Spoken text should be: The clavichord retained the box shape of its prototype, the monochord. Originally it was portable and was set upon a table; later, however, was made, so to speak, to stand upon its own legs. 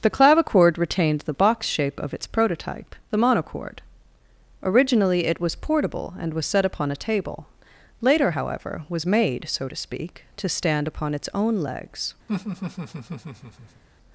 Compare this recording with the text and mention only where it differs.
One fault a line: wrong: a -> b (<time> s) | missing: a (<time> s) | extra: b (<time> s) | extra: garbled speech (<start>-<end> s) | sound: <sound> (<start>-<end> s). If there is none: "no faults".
sound: laugh (12.3-13.8 s)